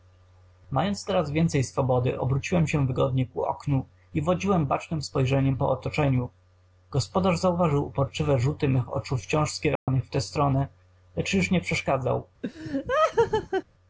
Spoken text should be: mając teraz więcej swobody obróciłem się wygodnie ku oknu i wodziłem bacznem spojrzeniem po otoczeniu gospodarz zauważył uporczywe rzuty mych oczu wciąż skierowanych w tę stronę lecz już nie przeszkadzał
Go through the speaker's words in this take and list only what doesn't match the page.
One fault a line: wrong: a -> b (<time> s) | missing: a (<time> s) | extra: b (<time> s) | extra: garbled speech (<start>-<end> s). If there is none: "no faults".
no faults